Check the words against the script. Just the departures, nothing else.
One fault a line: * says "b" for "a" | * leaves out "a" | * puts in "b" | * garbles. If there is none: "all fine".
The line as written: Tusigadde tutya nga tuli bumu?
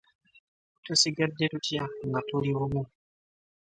all fine